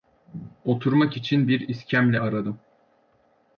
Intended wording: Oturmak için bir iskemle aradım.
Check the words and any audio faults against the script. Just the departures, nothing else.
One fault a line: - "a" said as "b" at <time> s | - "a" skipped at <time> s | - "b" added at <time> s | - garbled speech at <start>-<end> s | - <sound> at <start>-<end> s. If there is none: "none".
none